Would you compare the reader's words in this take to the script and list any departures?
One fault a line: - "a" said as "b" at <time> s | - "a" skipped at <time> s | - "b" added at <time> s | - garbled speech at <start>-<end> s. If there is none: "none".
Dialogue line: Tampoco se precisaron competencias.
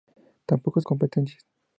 - "se precisaron" skipped at 0.8 s